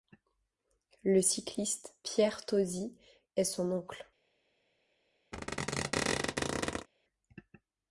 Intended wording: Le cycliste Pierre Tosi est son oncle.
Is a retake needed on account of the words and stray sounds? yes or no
yes